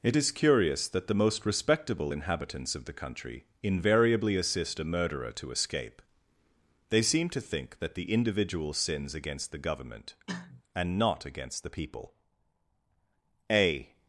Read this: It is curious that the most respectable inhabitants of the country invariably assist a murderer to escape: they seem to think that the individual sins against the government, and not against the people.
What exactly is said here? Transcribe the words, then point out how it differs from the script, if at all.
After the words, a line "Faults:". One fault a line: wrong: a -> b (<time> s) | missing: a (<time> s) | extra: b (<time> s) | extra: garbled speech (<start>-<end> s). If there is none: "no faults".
It is curious that the most respectable inhabitants of the country invariably assist a murderer to escape: they seem to think that the individual sins against the government, and not against the people. A
Faults:
extra: A (13.5 s)